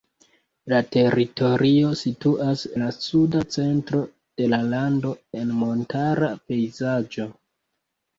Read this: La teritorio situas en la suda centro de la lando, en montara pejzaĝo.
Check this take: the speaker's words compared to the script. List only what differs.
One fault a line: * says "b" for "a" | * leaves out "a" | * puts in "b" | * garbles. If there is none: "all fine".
* leaves out "en"